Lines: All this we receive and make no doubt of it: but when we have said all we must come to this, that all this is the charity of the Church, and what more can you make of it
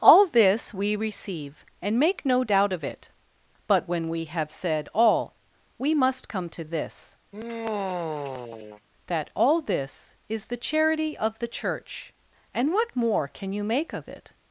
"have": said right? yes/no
yes